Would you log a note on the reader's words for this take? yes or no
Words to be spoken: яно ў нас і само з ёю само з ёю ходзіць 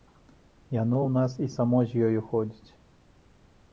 yes